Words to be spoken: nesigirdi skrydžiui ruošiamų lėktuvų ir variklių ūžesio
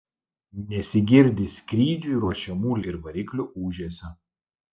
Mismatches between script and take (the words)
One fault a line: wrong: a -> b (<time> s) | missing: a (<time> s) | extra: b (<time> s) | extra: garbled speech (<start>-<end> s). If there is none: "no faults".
missing: lėktuvų (2.8 s)